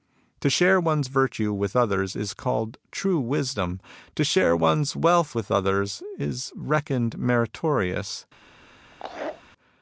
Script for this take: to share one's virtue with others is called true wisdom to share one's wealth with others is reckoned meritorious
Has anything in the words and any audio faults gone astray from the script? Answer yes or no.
yes